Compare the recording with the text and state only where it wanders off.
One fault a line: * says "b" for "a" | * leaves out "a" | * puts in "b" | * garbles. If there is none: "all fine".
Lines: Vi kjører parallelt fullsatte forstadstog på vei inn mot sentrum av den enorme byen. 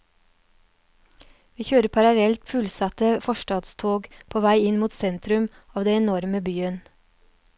all fine